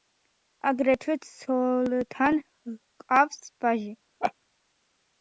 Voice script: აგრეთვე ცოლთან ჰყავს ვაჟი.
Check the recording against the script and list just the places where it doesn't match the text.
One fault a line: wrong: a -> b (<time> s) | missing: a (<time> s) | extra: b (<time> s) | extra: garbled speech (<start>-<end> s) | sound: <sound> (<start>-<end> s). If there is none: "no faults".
sound: laugh (4.2-4.3 s)